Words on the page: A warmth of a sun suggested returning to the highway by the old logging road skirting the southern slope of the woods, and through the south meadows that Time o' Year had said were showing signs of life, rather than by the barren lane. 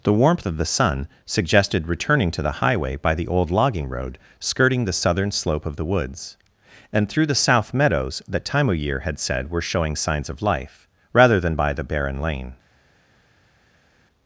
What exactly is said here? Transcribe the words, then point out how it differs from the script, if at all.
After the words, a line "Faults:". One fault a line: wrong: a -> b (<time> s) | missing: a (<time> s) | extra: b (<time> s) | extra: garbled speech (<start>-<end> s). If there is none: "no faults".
The warmth of the sun suggested returning to the highway by the old logging road skirting the southern slope of the woods, and through the south meadows that Time o' Year had said were showing signs of life, rather than by the barren lane.
Faults:
wrong: A -> The (0.0 s)
wrong: a -> the (0.6 s)